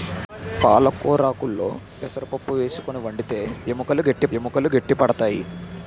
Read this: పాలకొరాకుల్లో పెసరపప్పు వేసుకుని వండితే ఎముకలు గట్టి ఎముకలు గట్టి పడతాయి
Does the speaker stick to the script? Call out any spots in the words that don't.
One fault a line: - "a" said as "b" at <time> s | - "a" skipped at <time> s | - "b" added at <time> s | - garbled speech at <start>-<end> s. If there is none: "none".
none